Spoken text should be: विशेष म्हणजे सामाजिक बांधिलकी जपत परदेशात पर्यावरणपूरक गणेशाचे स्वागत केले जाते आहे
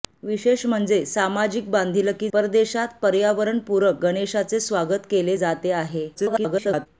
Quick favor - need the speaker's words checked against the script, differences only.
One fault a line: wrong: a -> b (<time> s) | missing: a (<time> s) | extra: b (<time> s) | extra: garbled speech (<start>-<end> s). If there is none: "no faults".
missing: जपत (2.3 s)
extra: garbled speech (6.1-6.9 s)